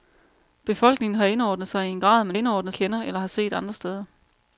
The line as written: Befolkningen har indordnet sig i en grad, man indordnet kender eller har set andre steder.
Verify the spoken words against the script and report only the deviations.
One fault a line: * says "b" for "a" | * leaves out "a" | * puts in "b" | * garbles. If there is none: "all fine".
all fine